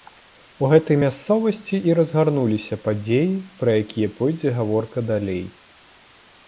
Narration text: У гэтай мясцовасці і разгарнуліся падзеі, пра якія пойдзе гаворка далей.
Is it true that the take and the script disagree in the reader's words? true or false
false